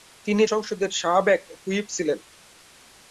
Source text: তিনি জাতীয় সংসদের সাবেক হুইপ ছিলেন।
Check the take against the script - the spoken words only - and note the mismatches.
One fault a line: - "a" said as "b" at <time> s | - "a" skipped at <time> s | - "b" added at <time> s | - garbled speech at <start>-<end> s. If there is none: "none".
- "জাতীয়" skipped at 0.4 s